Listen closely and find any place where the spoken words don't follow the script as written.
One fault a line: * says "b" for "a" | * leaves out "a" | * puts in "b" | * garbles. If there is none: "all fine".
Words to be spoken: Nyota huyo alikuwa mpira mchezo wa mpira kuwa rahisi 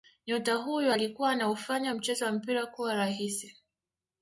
* says "anaufanya" for "mpira"